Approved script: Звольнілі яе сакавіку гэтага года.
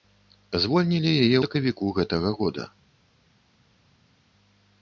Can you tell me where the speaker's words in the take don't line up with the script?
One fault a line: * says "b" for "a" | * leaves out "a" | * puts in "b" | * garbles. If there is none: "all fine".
all fine